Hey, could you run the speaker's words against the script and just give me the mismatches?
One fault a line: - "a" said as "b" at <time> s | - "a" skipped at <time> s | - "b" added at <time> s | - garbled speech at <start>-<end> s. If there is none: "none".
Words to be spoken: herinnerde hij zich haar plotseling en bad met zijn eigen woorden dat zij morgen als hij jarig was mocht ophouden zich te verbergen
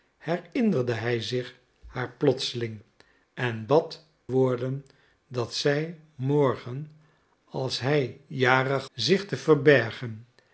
- "met zijn eigen" skipped at 4.0 s
- "was mocht ophouden" skipped at 8.9 s